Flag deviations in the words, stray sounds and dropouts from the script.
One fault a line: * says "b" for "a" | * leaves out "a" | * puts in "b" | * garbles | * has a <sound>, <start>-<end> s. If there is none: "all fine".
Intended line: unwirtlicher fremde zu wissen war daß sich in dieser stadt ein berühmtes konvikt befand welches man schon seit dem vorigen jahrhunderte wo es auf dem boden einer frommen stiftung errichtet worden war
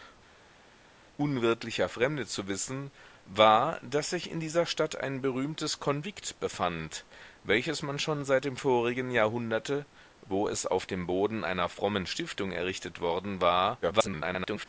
* garbles